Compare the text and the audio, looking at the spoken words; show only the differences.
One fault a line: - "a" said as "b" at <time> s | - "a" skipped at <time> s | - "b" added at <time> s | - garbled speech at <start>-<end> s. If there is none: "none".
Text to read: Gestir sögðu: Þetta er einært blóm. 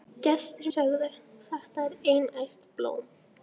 none